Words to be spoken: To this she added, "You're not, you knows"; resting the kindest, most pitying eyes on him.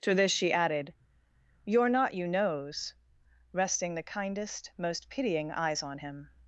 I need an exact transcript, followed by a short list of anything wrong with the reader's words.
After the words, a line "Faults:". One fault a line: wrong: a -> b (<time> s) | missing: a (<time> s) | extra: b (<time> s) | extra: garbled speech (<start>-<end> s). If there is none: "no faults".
To this she added, "You're not, you knows"; resting the kindest, most pitying eyes on him.
Faults:
no faults